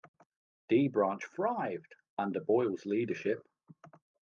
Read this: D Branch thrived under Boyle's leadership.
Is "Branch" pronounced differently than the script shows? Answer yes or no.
no